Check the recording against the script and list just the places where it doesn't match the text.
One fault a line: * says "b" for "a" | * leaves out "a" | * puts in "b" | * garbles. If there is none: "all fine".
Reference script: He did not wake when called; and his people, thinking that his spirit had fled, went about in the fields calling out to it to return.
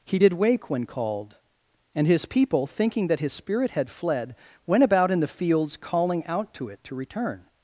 * leaves out "not"